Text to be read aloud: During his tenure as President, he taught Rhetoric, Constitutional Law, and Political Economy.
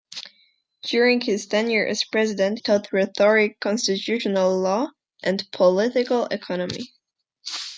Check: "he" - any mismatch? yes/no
yes